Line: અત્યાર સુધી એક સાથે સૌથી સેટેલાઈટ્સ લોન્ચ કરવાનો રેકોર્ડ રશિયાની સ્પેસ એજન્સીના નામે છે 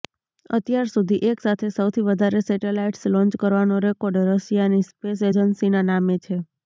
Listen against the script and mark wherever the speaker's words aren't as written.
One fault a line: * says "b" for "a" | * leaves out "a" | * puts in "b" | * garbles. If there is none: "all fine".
* puts in "વધારે"